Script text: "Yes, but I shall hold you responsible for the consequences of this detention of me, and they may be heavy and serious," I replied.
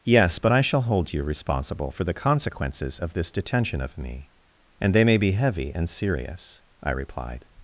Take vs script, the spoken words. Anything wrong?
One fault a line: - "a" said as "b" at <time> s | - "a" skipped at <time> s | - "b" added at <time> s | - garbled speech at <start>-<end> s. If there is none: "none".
none